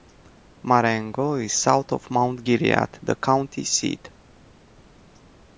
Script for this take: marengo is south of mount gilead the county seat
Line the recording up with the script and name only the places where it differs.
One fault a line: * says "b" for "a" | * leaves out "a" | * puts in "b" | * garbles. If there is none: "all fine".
all fine